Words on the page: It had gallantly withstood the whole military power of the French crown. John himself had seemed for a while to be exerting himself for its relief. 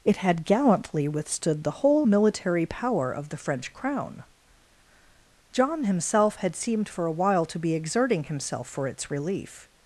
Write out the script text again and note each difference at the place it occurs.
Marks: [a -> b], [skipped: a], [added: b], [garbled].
It had gallantly withstood the whole military power of the French crown. John himself had seemed for a while to be exerting himself for its relief.